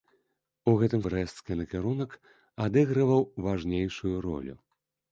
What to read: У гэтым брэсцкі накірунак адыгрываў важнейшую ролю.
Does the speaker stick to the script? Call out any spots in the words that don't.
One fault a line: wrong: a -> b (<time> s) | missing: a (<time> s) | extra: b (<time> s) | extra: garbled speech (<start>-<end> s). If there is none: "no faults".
no faults